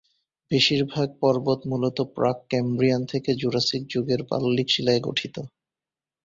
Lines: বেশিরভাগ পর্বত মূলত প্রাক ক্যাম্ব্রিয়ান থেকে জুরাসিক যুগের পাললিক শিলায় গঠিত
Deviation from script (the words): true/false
false